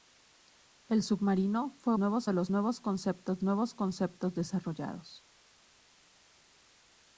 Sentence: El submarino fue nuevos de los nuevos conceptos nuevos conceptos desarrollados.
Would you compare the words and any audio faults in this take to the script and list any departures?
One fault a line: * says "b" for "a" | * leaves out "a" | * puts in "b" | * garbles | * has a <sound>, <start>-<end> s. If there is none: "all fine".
all fine